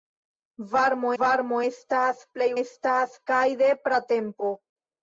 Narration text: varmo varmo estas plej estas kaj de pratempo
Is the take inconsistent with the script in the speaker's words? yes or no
no